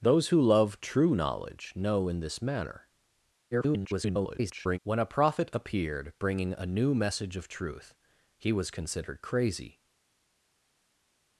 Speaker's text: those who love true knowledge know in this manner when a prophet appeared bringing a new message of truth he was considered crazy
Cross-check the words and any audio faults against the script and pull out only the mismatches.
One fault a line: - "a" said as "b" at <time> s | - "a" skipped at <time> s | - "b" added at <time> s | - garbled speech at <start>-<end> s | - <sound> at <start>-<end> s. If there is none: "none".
- garbled speech at 3.5-4.8 s